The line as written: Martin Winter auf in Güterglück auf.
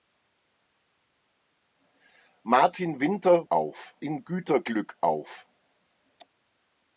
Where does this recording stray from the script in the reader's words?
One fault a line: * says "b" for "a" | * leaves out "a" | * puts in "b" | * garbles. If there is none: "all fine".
all fine